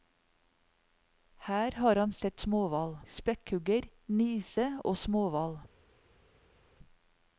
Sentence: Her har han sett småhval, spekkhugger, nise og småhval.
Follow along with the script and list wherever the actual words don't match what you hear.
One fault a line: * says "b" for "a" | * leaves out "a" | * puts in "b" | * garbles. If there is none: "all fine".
all fine